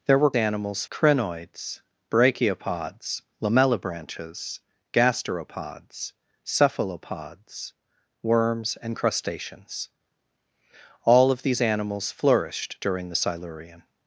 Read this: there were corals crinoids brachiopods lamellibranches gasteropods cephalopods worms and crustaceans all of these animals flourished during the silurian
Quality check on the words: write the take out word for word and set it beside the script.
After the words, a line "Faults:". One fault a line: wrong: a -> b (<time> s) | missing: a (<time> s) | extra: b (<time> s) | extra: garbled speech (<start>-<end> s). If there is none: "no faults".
there were animals crinoids brachiopods lamellibranches gasteropods cephalopods worms and crustaceans all of these animals flourished during the silurian
Faults:
wrong: corals -> animals (0.3 s)